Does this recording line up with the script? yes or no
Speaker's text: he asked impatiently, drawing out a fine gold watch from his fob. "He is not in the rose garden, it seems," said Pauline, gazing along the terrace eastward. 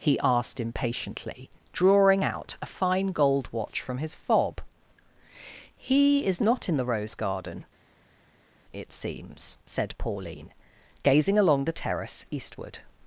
yes